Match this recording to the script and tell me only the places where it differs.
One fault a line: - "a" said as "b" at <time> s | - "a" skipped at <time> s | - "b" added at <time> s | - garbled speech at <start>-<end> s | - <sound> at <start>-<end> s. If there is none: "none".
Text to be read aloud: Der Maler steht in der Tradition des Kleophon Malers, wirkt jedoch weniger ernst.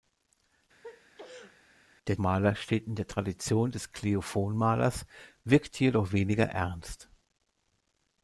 - sneeze at 0.8-1.6 s